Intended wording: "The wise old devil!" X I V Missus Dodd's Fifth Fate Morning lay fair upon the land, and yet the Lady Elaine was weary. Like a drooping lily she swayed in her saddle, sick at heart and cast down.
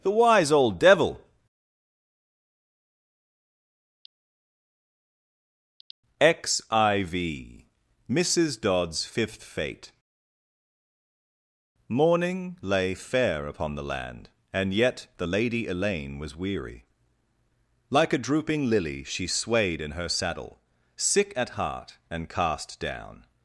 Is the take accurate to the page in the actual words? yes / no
yes